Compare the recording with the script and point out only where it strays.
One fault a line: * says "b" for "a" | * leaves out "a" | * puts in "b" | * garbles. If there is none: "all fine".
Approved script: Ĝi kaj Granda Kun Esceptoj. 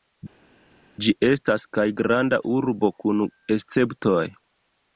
* puts in "estas"
* puts in "Urbo"